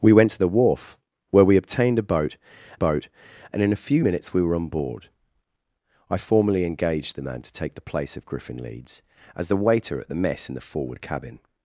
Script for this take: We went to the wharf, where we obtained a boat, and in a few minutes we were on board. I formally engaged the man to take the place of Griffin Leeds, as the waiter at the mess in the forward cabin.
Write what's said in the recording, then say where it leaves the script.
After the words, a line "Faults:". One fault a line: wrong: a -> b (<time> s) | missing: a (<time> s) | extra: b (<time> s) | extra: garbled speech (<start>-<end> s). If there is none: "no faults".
We went to the wharf, where we obtained a boat boat, and in a few minutes we were on board. I formally engaged the man to take the place of Griffin Leeds, as the waiter at the mess in the forward cabin.
Faults:
extra: boat (2.7 s)